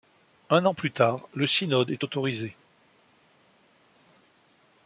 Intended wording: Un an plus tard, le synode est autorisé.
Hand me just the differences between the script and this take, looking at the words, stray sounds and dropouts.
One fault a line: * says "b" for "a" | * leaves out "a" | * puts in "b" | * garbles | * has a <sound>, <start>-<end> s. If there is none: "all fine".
all fine